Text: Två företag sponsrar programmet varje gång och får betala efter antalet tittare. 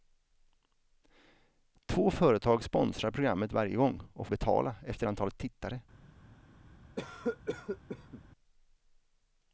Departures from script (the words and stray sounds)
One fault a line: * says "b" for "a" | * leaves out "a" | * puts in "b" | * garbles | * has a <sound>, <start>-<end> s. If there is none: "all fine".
* leaves out "får"
* has a cough, 7.0-8.2 s